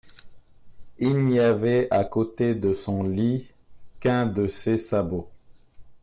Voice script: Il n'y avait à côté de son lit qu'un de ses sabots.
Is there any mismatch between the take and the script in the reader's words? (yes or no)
no